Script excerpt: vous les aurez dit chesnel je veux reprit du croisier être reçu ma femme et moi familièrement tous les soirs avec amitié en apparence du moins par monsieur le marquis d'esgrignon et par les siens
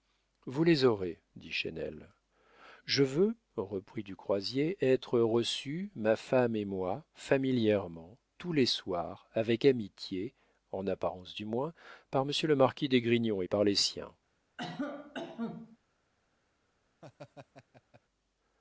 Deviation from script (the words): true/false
false